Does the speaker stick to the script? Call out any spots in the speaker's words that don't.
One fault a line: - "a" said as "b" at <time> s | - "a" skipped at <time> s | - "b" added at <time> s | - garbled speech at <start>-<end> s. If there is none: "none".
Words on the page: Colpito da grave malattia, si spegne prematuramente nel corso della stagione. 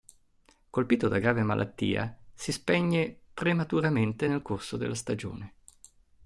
none